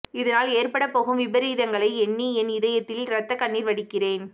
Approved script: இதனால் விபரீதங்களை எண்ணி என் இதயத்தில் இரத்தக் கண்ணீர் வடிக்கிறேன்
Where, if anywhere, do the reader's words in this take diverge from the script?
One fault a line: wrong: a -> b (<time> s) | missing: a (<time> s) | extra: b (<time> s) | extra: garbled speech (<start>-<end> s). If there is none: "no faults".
extra: ஏற்படப்போகும் (0.5 s)